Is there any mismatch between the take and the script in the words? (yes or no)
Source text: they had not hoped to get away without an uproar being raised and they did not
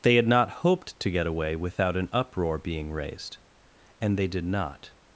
no